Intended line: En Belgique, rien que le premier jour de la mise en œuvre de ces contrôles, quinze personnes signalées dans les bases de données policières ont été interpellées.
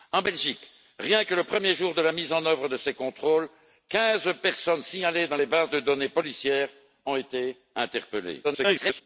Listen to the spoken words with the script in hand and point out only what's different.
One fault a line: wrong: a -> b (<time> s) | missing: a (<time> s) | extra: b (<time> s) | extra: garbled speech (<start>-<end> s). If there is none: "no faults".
extra: garbled speech (8.4-9.0 s)